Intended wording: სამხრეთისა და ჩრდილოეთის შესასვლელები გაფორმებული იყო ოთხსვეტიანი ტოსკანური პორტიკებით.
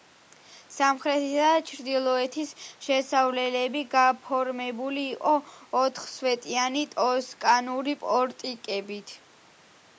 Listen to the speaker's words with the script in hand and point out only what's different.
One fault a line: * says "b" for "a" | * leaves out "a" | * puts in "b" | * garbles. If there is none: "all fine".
all fine